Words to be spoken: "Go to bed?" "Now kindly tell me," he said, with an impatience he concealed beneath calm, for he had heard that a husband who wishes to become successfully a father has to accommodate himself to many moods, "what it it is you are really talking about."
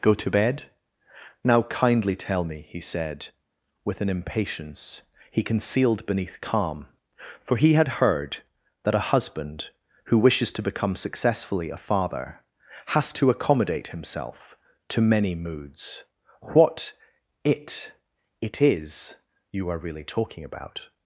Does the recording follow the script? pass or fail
pass